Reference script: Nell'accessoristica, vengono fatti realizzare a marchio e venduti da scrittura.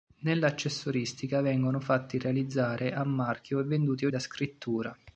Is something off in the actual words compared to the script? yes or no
no